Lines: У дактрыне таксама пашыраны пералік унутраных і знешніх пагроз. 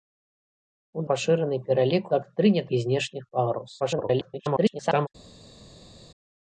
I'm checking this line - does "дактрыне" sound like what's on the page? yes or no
no